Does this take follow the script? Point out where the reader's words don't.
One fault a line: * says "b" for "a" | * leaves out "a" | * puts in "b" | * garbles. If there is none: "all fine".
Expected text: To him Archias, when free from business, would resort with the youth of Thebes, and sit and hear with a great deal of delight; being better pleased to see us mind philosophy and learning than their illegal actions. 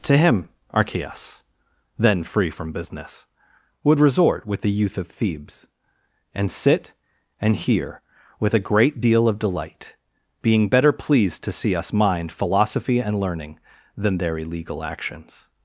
* says "then" for "when"